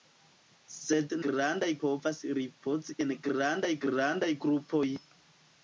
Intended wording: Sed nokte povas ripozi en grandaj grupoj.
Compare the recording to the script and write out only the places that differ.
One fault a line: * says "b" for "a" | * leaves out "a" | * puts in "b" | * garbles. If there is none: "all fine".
* says "grandaj" for "nokte"
* puts in "grandaj"